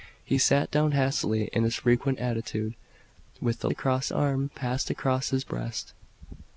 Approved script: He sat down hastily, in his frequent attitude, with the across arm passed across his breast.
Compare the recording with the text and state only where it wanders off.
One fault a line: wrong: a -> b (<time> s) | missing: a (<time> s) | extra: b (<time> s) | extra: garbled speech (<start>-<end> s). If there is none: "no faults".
no faults